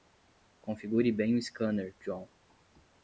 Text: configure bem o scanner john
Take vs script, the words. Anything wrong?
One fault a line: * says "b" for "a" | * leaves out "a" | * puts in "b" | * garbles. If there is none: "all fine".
all fine